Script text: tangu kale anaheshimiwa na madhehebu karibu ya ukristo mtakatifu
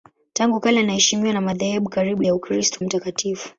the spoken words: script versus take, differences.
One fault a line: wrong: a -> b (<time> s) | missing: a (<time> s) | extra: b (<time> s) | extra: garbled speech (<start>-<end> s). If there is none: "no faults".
no faults